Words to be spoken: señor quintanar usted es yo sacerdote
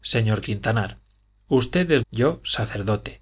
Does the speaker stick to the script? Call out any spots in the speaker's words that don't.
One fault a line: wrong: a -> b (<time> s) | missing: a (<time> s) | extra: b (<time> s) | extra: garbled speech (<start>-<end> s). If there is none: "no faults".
no faults